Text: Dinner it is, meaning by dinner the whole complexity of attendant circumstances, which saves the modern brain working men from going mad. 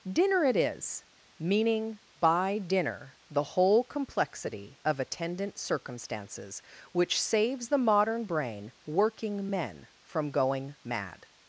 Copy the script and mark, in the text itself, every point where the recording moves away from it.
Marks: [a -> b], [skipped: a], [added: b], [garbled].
Dinner it is, meaning by dinner the whole complexity of attendant circumstances, which saves the modern brain working men from going mad.